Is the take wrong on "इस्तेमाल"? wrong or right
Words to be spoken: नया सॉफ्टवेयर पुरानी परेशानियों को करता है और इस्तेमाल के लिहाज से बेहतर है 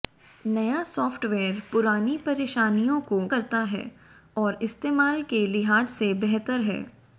right